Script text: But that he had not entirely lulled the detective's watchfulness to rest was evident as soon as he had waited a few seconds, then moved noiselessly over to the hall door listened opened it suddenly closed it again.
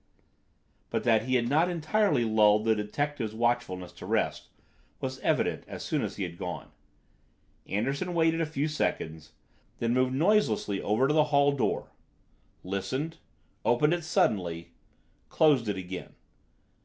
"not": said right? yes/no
yes